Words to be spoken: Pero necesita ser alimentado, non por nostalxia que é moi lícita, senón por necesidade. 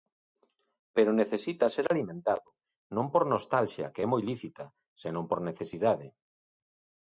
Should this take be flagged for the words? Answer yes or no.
no